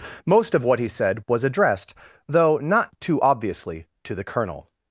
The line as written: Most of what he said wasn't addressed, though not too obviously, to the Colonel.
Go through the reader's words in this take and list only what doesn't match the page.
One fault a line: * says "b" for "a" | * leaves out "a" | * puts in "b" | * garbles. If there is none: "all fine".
* says "was" for "wasn't"